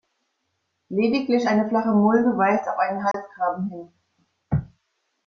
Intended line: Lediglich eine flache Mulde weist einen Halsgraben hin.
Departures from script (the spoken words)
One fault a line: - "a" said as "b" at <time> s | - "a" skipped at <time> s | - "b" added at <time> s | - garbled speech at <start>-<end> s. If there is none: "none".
- "auf" added at 2.7 s